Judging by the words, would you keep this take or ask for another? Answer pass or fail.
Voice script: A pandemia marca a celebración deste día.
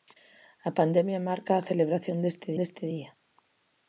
fail